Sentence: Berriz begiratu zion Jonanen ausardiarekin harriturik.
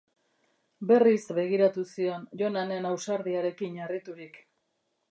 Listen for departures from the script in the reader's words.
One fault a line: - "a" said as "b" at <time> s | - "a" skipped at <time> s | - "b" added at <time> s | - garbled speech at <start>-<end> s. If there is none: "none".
none